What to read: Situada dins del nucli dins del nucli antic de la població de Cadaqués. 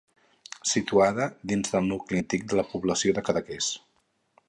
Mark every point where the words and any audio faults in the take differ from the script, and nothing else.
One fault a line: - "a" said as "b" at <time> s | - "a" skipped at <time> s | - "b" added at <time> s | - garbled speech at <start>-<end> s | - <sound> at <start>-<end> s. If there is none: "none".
- "dins del nucli" skipped at 2.2 s